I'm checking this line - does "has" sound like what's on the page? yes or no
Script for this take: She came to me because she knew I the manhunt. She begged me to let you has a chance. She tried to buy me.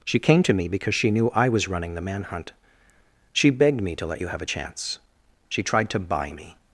no